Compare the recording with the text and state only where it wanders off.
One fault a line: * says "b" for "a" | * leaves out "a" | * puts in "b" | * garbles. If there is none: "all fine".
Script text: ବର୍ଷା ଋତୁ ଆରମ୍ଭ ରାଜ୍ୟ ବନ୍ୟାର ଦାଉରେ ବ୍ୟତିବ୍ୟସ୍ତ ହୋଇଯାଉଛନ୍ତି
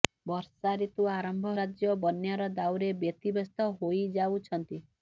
all fine